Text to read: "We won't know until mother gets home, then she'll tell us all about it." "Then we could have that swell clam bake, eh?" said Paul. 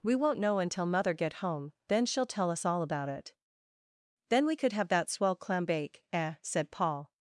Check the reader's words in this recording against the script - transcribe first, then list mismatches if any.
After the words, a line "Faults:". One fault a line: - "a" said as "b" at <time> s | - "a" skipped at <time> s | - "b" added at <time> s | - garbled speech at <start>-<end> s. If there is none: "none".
"We won't know until mother get home, then she'll tell us all about it." "Then we could have that swell clam bake, eh?" said Paul.
Faults:
- "gets" said as "get" at 1.1 s